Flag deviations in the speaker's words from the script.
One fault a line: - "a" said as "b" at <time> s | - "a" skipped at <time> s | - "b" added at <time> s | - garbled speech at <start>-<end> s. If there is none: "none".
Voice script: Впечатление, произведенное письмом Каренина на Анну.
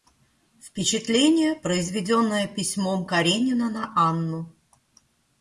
none